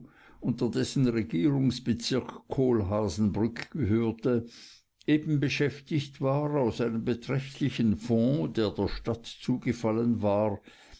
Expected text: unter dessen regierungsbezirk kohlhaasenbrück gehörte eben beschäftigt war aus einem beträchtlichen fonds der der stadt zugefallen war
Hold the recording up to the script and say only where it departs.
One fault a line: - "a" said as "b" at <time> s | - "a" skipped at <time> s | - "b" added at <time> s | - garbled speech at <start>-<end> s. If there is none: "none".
none